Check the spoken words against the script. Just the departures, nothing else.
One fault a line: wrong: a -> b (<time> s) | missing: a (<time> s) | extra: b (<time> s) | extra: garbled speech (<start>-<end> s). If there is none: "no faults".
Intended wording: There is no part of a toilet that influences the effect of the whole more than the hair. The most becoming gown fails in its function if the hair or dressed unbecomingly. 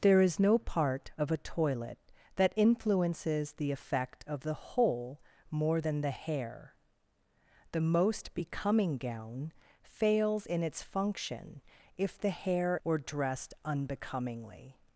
no faults